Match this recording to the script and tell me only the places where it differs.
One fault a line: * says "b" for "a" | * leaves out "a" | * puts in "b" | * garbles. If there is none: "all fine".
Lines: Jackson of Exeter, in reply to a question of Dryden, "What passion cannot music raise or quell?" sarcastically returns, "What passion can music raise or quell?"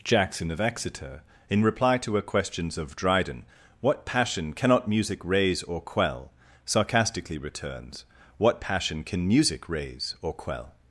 * says "questions" for "question"